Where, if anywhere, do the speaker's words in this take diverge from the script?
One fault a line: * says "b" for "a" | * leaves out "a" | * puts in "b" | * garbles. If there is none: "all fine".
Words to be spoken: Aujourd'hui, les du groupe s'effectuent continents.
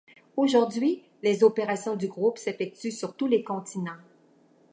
* puts in "opérations"
* puts in "sur tous les"